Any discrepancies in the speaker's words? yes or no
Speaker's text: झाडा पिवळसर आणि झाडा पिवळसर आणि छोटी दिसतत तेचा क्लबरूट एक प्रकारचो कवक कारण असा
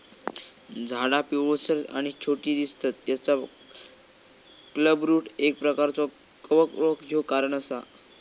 yes